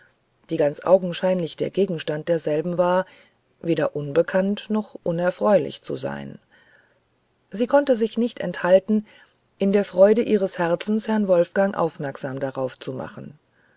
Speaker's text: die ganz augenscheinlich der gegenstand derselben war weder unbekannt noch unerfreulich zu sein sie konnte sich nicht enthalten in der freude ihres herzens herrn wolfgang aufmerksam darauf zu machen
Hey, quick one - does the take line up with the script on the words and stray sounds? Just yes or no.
yes